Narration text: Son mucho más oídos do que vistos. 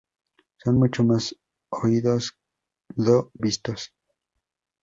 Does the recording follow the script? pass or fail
fail